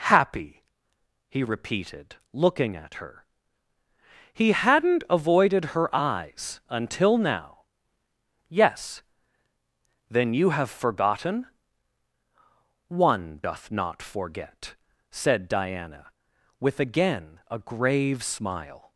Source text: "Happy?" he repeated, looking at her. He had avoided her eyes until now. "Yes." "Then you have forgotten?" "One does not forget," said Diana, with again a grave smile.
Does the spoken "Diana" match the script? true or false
true